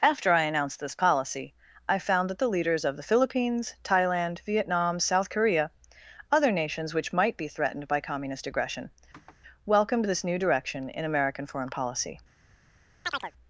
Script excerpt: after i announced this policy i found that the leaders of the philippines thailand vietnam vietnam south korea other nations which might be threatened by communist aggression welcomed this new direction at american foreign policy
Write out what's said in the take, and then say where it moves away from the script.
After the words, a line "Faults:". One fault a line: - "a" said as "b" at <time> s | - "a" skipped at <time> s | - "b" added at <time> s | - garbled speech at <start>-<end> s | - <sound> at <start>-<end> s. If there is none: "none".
after i announced this policy i found that the leaders of the philippines thailand vietnam south korea other nations which might be threatened by communist aggression welcomed this new direction in american foreign policy
Faults:
- "vietnam" skipped at 5.0 s
- sniff at 9.1-9.4 s
- "at" said as "in" at 10.9 s
- chirp at 13.0-13.3 s